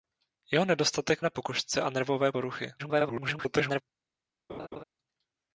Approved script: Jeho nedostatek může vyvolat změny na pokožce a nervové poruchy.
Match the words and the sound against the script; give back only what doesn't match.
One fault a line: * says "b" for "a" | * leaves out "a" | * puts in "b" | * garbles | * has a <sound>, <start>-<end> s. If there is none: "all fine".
* leaves out "může vyvolat změny"
* garbles
* has a laugh, 4.5-4.8 s